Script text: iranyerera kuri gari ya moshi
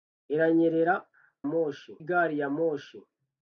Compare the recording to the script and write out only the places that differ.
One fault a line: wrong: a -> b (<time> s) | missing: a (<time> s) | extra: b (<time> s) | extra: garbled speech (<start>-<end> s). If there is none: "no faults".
wrong: kuri -> moshi (1.5 s)